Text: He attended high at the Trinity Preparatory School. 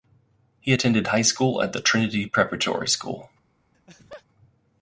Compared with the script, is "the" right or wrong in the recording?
right